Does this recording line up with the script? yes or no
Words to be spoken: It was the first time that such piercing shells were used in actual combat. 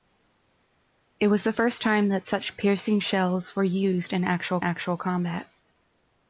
no